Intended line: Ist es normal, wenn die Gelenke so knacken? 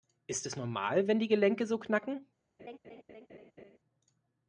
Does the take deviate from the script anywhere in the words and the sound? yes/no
yes